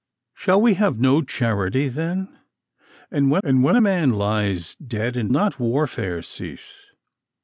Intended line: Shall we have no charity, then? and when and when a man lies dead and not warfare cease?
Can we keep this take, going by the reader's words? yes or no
yes